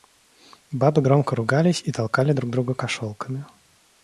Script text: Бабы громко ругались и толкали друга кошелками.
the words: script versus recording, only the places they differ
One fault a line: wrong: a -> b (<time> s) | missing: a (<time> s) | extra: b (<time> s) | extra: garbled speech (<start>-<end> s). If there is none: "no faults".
extra: друг (2.3 s)